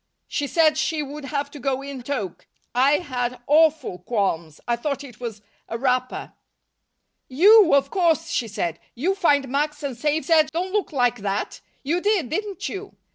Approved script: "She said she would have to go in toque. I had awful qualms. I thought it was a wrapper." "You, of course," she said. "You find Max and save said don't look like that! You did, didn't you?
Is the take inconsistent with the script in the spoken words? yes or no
no